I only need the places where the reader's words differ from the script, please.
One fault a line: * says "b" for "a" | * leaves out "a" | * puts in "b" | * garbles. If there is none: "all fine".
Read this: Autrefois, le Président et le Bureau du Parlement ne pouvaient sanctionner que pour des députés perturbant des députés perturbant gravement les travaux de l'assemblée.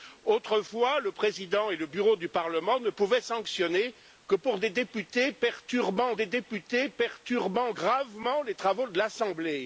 all fine